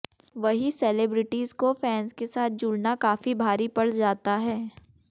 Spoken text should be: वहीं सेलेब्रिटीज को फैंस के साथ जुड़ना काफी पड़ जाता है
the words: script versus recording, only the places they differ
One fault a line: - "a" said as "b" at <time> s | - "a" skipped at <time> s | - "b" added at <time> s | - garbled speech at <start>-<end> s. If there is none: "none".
- "भारी" added at 3.4 s